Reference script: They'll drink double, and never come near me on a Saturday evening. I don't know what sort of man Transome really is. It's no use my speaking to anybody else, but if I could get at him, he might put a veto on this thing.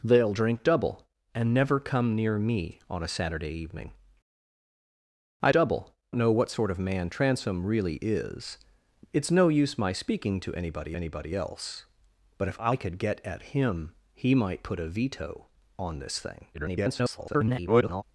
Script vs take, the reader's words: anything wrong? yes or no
yes